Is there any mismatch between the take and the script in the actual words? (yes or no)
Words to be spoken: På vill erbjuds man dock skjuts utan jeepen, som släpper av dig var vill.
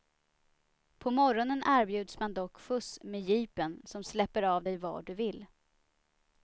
yes